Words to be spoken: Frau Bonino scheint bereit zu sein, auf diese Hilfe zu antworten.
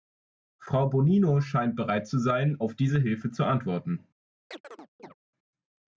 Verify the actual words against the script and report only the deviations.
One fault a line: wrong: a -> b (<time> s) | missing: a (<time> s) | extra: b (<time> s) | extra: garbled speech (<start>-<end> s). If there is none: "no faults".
no faults